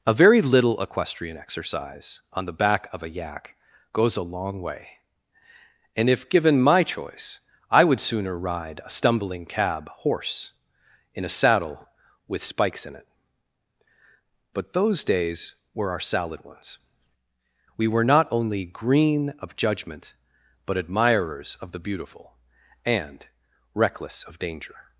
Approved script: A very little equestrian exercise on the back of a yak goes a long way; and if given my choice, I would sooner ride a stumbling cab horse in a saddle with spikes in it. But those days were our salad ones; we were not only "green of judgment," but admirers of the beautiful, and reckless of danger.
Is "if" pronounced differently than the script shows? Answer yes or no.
no